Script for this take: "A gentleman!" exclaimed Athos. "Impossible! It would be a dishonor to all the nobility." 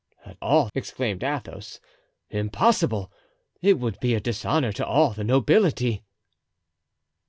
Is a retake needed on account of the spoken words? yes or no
yes